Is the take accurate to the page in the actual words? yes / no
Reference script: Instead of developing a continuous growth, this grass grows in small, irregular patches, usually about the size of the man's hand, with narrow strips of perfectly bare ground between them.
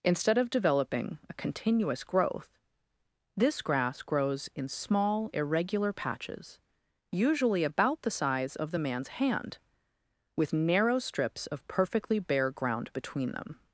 yes